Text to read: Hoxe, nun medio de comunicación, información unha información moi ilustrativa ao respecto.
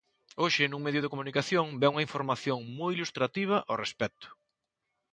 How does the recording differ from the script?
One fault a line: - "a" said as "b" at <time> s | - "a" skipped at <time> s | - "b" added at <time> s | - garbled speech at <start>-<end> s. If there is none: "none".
- "información" said as "vén" at 1.8 s